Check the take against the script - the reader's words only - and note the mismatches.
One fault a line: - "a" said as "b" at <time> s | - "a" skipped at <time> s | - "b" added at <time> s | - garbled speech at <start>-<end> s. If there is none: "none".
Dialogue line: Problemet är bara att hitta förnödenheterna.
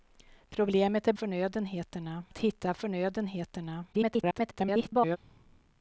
- "bara" said as "förnödenheterna" at 1.1 s
- garbled speech at 3.9-5.2 s